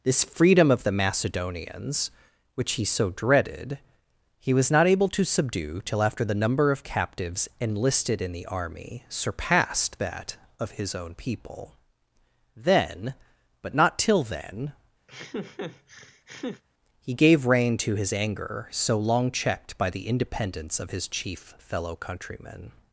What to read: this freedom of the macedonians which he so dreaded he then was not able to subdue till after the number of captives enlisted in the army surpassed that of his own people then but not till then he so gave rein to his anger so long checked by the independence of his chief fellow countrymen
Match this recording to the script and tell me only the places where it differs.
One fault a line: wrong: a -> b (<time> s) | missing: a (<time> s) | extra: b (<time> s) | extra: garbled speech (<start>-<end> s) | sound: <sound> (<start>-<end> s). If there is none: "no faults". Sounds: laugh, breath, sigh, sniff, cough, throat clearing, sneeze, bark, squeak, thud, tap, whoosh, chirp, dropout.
missing: then (4.5 s)
sound: laugh (15.1-16.6 s)
missing: so (17.1 s)